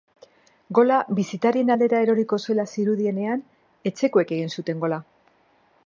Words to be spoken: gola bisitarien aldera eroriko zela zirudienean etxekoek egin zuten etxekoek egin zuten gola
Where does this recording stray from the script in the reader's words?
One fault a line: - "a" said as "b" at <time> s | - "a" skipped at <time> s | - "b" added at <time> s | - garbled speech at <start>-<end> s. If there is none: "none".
- "etxekoek egin zuten" skipped at 4.9 s